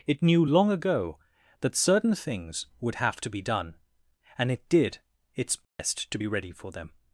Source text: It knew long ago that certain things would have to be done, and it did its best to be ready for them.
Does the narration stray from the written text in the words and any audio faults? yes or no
yes